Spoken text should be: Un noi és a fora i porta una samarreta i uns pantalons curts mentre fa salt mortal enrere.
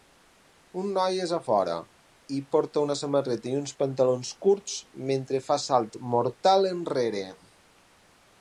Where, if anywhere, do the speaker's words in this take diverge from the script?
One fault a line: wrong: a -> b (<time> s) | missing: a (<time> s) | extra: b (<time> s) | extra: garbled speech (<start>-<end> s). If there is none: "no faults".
no faults